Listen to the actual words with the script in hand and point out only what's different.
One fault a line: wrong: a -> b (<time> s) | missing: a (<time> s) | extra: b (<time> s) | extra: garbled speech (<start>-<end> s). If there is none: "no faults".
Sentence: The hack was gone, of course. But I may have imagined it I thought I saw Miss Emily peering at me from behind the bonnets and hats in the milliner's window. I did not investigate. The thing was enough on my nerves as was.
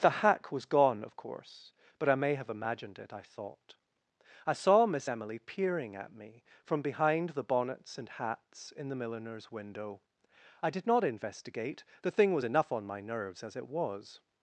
extra: it (13.6 s)